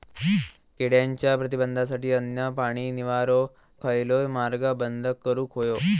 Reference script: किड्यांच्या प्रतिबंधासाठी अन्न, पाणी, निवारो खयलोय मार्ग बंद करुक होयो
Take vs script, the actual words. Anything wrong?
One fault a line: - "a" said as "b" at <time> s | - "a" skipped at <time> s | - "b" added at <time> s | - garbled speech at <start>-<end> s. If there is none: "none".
none